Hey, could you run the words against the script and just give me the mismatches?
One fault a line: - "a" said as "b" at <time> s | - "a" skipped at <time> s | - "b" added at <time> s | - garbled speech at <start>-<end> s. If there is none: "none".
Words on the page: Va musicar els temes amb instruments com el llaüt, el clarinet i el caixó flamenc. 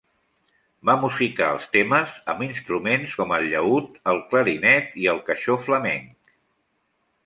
none